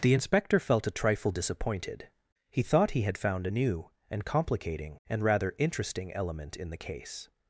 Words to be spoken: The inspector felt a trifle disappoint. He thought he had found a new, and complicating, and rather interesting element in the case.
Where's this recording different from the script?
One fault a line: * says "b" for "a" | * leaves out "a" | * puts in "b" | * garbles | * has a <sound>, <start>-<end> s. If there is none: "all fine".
* says "disappointed" for "disappoint"